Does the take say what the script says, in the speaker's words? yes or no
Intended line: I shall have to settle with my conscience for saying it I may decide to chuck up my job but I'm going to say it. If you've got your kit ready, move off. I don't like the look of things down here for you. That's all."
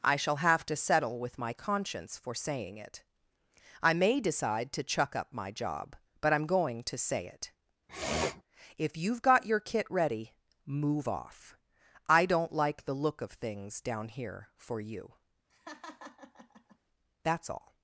yes